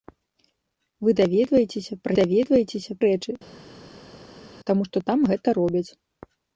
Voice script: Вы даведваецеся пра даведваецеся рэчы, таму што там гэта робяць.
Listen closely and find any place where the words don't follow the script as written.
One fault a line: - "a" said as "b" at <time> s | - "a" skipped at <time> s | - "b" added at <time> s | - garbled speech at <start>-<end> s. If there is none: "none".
none